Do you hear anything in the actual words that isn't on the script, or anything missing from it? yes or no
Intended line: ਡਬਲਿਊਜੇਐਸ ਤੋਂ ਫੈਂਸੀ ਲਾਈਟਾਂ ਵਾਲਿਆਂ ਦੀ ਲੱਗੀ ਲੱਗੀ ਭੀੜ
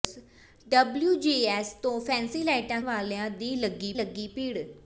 no